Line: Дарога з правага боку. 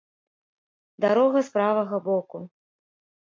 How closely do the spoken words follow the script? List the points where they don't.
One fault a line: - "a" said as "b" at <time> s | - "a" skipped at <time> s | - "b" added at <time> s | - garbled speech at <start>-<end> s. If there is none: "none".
none